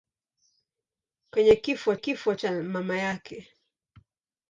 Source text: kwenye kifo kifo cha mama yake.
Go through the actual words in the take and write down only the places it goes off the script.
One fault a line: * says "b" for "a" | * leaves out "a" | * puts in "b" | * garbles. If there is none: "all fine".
all fine